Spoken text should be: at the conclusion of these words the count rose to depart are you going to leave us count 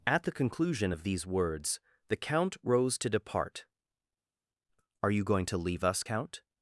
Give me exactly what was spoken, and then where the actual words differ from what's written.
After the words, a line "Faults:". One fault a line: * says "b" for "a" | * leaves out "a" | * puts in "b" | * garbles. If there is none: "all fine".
at the conclusion of these words the count rose to depart are you going to leave us count
Faults:
all fine